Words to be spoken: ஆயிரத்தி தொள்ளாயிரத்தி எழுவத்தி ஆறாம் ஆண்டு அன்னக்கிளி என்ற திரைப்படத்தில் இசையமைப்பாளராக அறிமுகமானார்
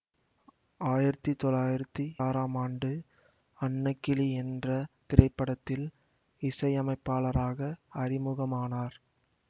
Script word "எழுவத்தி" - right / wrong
wrong